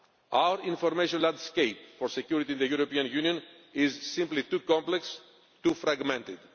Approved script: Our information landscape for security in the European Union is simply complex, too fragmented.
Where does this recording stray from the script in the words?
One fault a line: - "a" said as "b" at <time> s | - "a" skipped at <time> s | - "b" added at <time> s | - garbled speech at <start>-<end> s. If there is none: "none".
- "too" added at 4.4 s